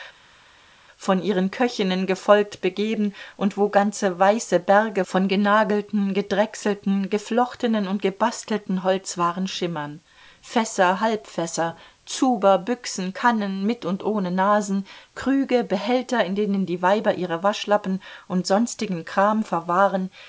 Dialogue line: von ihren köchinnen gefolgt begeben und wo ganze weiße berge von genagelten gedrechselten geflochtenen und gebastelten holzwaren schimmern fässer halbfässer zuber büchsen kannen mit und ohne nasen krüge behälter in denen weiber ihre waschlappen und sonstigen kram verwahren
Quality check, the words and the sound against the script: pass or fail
fail